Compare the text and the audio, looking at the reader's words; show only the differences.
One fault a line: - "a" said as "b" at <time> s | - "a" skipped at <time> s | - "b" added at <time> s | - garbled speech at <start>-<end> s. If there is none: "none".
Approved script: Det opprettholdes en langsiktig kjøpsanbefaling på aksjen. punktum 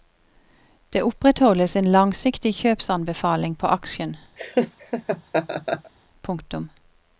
none